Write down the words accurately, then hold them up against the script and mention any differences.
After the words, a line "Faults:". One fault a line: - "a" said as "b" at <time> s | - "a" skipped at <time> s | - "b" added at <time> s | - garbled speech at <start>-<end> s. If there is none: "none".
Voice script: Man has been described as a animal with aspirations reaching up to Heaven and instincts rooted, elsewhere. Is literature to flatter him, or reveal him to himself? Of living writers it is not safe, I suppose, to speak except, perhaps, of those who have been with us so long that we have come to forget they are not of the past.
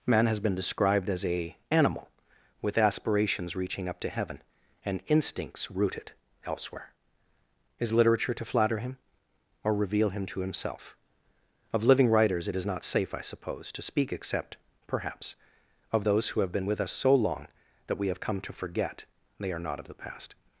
Man has been described as a animal with aspirations reaching up to Heaven and instincts rooted, elsewhere. Is literature to flatter him, or reveal him to himself? Of living writers it is not safe, I suppose, to speak except, perhaps, of those who have been with us so long that we have come to forget they are not of the past.
Faults:
none